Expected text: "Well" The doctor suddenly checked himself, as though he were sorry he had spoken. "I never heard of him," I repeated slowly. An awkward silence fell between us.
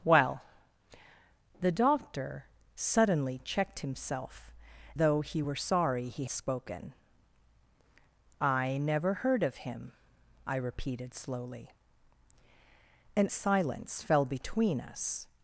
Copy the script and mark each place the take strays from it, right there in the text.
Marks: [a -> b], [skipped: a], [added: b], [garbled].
"Well" The doctor suddenly checked himself, [skipped: as] though he were sorry he [skipped: had] spoken. "I never heard of him," I repeated slowly. An [skipped: awkward] silence fell between us.